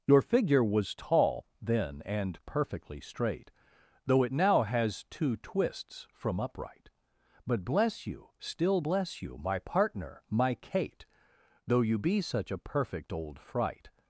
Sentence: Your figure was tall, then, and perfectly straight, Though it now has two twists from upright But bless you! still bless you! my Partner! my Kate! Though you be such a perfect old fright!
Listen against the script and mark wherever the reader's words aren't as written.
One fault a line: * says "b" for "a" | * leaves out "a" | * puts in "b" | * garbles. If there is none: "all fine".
all fine